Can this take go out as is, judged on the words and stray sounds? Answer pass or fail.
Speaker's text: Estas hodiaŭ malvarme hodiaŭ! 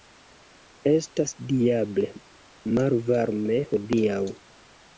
fail